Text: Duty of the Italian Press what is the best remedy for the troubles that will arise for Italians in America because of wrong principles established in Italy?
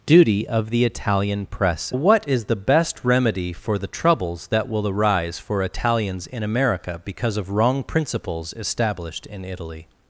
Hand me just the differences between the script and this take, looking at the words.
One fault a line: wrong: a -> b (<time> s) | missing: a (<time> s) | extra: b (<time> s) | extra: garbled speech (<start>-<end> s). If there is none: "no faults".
no faults